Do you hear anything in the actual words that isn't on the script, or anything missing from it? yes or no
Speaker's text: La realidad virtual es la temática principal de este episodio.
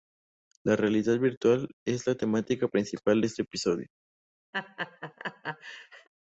no